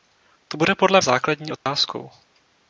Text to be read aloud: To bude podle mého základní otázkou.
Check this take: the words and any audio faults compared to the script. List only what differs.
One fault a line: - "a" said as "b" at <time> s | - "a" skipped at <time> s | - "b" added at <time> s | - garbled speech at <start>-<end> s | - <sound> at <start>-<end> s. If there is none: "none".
- "mého" skipped at 1.0 s
- dropout at 1.6-1.7 s